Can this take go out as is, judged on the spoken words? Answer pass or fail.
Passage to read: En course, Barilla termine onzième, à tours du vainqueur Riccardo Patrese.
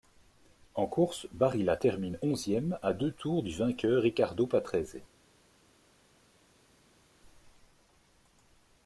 fail